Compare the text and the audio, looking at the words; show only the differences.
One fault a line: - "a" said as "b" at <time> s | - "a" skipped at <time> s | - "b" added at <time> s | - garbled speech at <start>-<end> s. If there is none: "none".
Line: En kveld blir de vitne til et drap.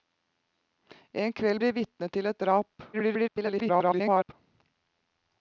- "blir" skipped at 1.6 s
- garbled speech at 2.9-4.3 s